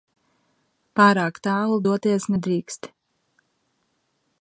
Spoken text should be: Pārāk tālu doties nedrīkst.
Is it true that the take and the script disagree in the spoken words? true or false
false